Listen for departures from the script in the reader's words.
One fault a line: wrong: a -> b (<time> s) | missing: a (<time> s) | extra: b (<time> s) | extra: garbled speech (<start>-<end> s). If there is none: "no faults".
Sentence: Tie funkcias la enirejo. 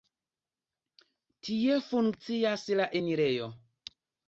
no faults